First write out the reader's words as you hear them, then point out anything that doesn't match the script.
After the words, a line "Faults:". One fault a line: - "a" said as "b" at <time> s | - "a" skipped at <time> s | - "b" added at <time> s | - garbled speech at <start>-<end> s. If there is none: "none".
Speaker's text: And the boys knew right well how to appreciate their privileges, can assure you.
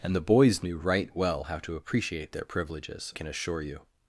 And the boys knew right well how to appreciate their privileges, can assure you.
Faults:
none